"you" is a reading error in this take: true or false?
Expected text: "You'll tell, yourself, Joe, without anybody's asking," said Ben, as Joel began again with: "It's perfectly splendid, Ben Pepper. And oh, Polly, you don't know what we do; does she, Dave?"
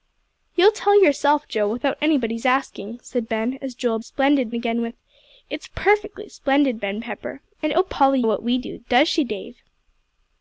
true